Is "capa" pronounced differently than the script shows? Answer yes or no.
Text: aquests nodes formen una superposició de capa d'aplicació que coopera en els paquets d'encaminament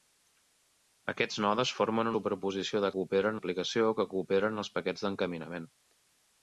yes